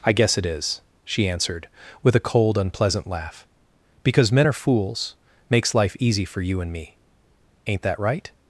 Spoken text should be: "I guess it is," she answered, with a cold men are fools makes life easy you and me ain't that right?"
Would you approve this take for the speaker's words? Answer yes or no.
no